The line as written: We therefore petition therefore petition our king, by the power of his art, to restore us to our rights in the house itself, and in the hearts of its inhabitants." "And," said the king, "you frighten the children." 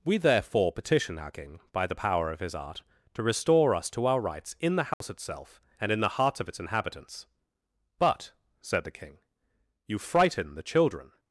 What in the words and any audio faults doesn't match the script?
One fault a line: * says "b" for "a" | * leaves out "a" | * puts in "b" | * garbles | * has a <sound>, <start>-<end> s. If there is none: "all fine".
* leaves out "therefore petition"
* has a dropout, 4.9-5.0 s
* says "But" for "And"